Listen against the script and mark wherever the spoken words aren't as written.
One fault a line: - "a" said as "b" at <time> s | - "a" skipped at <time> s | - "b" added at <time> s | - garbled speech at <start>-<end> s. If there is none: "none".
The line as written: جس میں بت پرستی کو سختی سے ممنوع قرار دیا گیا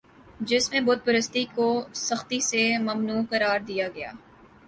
none